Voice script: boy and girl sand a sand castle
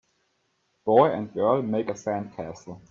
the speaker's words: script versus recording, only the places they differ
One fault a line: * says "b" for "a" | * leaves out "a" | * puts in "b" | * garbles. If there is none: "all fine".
* says "make" for "sand"